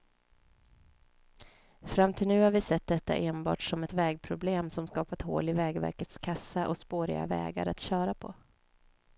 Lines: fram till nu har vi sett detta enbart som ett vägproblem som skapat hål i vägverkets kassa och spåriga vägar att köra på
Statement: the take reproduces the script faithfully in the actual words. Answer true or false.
true